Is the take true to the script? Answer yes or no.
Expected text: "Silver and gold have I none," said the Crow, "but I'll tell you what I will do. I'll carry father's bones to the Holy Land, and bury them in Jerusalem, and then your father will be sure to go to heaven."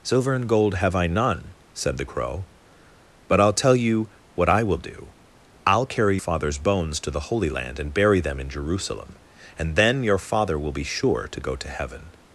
yes